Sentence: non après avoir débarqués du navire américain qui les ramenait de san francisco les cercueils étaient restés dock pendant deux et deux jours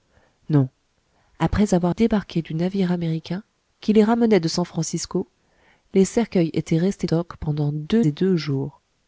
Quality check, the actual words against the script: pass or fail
pass